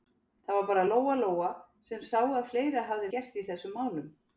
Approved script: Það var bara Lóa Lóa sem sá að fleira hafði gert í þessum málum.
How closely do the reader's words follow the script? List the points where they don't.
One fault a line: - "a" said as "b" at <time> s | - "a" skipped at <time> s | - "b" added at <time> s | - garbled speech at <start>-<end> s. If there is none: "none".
none